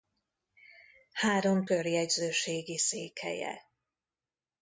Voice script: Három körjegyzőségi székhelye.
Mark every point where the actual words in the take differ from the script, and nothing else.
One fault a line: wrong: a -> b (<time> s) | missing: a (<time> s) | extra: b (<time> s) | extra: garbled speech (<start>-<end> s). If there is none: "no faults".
no faults